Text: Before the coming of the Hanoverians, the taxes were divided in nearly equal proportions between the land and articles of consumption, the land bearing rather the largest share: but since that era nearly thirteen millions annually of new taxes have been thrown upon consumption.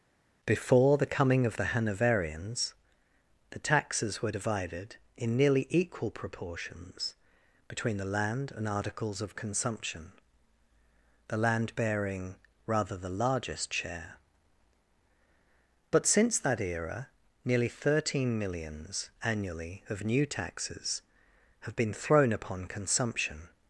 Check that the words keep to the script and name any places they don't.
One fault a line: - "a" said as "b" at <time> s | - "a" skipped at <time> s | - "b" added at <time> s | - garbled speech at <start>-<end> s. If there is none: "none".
none